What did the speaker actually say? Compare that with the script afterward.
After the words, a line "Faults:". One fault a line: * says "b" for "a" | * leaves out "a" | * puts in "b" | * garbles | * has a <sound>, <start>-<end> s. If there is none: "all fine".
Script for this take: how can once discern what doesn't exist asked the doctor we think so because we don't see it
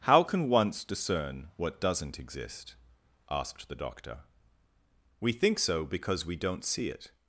how can once discern what doesn't exist asked the doctor we think so because we don't see it
Faults:
all fine